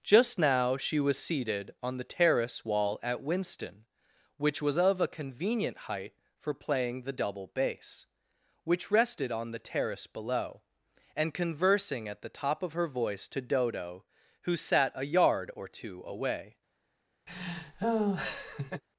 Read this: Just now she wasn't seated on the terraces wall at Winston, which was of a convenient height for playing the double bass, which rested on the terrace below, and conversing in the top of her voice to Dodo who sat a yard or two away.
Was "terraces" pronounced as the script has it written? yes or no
no